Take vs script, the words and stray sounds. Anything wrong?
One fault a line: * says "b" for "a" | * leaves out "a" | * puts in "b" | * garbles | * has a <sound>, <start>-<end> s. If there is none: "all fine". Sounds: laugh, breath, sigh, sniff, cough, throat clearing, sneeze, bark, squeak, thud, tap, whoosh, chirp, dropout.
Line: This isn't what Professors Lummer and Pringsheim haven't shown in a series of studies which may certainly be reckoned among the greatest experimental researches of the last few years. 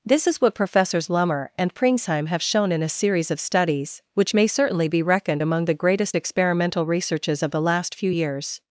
* says "is" for "isn't"
* says "have" for "haven't"